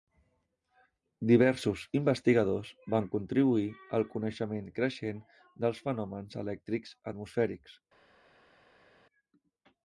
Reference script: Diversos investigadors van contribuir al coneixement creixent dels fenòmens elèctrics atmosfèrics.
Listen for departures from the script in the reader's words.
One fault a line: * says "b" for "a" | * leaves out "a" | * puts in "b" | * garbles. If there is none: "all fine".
all fine